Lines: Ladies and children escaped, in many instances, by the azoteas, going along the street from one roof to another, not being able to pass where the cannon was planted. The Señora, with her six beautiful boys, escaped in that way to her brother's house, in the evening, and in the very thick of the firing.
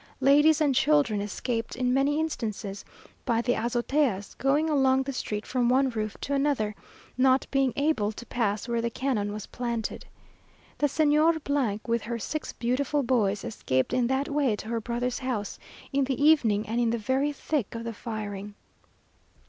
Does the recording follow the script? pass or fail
pass